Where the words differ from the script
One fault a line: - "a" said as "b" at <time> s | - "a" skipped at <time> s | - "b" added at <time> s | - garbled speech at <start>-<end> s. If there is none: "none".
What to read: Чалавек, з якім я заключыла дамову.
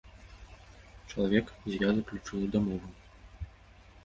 - "якім" skipped at 1.8 s